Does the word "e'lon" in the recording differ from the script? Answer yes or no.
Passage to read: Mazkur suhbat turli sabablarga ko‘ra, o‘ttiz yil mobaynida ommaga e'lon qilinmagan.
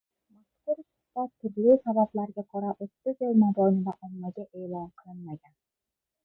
no